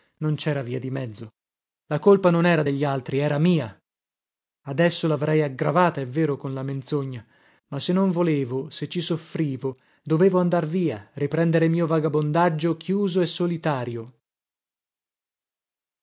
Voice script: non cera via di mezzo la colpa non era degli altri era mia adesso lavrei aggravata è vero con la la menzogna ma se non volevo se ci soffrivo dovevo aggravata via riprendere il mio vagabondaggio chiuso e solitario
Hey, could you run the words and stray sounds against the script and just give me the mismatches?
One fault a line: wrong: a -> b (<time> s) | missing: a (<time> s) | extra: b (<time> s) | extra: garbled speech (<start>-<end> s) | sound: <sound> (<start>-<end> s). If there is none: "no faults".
missing: la (6.6 s)
wrong: aggravata -> andar (10.4 s)